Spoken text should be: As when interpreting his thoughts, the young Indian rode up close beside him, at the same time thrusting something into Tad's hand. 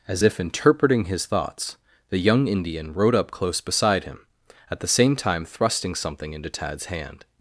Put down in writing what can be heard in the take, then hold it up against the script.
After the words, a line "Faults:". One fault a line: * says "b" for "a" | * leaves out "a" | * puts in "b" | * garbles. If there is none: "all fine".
As if interpreting his thoughts, the young Indian rode up close beside him, at the same time thrusting something into Tad's hand.
Faults:
* says "if" for "when"